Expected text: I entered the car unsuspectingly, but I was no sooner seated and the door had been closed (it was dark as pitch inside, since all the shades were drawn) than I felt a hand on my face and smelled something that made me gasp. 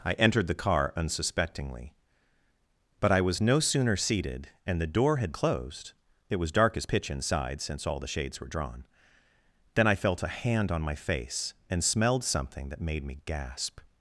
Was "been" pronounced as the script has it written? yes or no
no